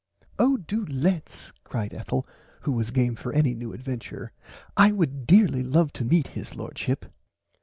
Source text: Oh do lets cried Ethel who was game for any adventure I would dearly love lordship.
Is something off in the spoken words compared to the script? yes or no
yes